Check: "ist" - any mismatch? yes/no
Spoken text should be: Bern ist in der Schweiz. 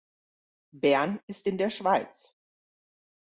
no